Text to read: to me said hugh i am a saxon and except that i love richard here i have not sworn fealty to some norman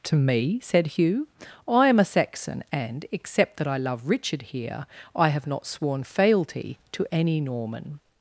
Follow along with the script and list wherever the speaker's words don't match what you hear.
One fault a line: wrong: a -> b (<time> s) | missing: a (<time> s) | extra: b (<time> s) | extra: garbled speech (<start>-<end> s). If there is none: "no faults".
wrong: some -> any (7.1 s)